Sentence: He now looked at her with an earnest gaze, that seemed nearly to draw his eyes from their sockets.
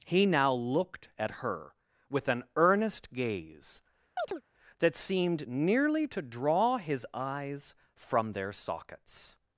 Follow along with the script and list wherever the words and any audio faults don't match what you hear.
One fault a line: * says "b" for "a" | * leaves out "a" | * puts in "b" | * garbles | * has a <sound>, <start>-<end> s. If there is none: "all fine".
* has a chirp, 4.2-4.4 s